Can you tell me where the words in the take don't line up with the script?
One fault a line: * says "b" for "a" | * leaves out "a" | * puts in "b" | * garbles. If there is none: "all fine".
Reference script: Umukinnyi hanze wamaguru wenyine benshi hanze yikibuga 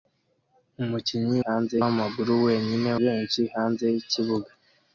all fine